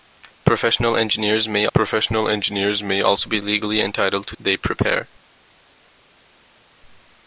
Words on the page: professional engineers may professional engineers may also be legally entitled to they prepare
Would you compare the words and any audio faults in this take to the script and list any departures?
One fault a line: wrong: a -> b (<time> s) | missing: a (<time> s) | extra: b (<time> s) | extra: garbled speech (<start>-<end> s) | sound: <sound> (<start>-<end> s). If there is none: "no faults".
no faults